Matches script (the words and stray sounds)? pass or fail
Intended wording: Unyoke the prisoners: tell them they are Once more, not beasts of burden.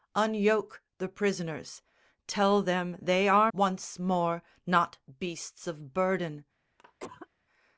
fail